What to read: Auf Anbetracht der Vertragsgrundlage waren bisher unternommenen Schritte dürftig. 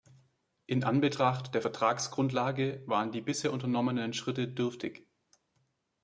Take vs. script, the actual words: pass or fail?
fail